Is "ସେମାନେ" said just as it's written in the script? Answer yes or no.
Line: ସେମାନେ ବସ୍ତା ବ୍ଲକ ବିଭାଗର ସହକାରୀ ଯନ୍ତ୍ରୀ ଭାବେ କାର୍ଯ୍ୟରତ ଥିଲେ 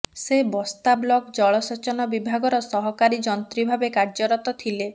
no